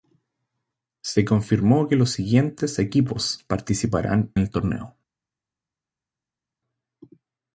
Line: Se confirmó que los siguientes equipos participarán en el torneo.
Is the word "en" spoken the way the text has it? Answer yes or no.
no